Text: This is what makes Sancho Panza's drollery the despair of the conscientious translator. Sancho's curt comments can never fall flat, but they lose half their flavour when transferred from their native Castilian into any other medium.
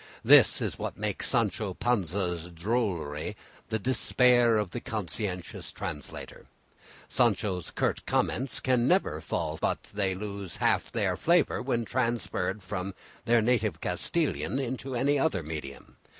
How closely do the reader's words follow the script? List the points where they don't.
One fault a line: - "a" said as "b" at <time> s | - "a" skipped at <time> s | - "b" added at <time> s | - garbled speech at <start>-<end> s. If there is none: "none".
- "flat" skipped at 9.6 s